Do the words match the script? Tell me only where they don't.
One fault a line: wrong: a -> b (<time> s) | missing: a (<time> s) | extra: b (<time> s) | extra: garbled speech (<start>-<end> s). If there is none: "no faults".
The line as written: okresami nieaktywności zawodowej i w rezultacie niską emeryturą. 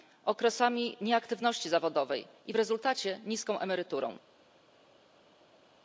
no faults